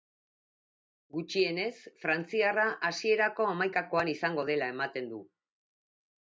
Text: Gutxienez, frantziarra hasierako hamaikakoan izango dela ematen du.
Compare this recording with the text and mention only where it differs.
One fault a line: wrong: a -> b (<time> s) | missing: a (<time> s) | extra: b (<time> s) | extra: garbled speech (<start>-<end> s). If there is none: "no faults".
no faults